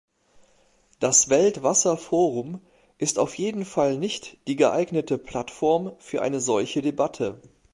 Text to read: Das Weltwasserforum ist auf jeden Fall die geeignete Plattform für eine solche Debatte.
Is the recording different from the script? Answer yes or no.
yes